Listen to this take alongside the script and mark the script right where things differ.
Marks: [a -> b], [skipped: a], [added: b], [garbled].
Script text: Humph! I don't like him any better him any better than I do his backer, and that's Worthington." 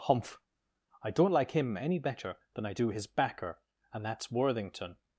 Humph! I don't like him any better [skipped: him any better] than I do his backer, and that's Worthington."